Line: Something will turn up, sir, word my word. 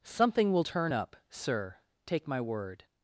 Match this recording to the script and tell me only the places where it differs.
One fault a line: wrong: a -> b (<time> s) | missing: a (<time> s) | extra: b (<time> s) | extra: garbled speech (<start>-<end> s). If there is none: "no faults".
wrong: word -> take (2.0 s)